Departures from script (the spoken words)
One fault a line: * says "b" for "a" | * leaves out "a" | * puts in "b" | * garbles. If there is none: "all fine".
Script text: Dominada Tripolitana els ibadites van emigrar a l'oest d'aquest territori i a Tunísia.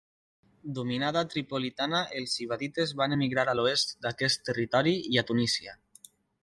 all fine